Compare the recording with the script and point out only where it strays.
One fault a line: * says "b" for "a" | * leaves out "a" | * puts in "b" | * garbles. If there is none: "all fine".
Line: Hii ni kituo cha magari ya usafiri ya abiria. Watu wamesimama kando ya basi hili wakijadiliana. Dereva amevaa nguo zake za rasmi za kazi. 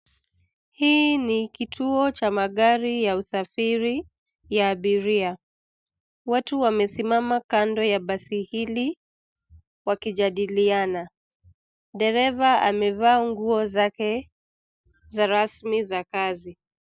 all fine